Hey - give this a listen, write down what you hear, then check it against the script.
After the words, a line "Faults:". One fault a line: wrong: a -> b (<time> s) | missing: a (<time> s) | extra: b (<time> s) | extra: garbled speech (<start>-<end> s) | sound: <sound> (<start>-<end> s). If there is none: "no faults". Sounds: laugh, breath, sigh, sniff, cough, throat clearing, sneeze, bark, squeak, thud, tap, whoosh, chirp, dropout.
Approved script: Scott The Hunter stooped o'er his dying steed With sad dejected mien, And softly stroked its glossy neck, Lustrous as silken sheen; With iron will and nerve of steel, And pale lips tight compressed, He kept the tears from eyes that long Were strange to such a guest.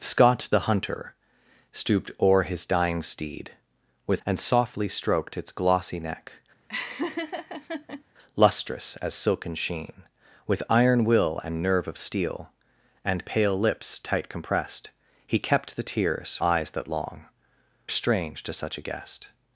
Scott The Hunter stooped o'er his dying steed With And softly stroked its glossy neck, Lustrous as silken sheen; With iron will and nerve of steel, And pale lips tight compressed, He kept the tears eyes that long Strange to such a guest.
Faults:
missing: sad dejected mien (4.2 s)
sound: laugh (6.7-8.0 s)
missing: from (16.4 s)
missing: Were (17.2 s)